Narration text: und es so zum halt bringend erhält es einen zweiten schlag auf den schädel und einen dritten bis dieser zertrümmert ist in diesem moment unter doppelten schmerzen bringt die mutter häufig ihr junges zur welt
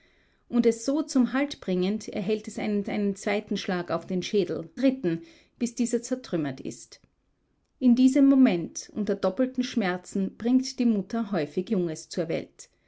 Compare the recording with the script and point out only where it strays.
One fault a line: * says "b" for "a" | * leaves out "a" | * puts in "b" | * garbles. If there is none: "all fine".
* puts in "einen"
* leaves out "und einen"
* leaves out "ihr"